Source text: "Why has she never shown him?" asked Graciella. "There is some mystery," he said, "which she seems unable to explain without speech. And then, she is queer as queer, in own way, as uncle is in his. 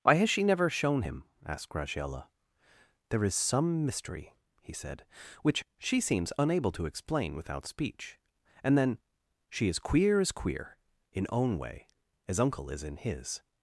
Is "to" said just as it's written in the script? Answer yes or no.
yes